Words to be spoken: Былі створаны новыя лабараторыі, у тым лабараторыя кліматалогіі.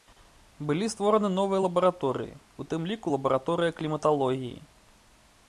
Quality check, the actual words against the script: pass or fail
fail